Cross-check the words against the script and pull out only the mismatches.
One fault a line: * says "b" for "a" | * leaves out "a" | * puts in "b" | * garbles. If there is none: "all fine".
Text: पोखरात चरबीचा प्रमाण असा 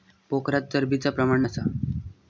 all fine